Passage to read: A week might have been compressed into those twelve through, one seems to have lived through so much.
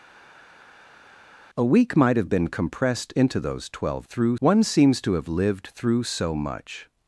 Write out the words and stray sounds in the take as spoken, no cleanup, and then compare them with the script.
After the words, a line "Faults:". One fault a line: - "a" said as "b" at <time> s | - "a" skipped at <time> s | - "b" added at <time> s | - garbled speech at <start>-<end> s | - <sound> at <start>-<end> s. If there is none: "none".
A week might have been compressed into those twelve through, one seems to have lived through so much.
Faults:
none